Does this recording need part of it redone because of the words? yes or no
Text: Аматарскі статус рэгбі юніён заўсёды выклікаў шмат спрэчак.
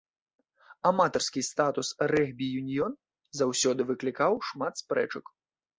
no